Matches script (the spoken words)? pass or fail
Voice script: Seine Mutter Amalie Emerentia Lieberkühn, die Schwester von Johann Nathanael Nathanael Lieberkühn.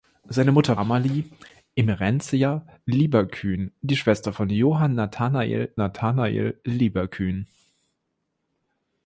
pass